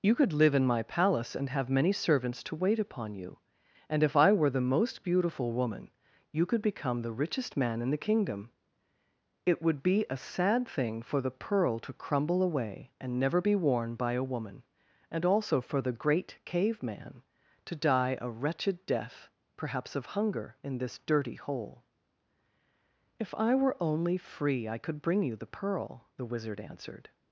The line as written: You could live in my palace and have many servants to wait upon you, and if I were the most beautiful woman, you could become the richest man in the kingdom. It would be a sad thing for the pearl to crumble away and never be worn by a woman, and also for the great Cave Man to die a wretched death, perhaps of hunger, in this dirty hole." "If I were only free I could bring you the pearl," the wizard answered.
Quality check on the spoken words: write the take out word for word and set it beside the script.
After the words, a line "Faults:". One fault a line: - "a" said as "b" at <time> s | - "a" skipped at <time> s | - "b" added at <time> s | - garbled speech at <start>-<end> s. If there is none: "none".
You could live in my palace and have many servants to wait upon you, and if I were the most beautiful woman, you could become the richest man in the kingdom. It would be a sad thing for the pearl to crumble away and never be worn by a woman, and also for the great Cave Man to die a wretched death, perhaps of hunger, in this dirty hole." "If I were only free I could bring you the pearl," the wizard answered.
Faults:
none